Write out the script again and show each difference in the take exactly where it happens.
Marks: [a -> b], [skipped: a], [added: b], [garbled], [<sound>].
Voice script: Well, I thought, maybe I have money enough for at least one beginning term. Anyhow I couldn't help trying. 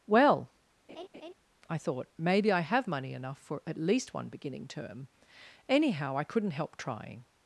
Well, [laugh] I thought, maybe I have money enough for at least one beginning term. Anyhow I couldn't help trying.